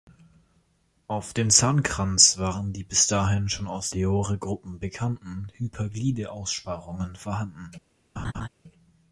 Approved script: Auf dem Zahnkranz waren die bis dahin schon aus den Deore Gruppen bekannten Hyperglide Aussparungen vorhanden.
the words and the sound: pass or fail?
fail